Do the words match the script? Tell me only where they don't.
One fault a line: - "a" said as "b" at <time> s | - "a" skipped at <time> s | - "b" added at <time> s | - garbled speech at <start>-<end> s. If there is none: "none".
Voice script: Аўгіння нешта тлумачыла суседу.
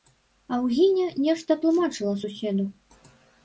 none